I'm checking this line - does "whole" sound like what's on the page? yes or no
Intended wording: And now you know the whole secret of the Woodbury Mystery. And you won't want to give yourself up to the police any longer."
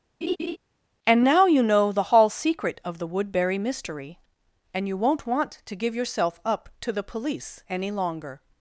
no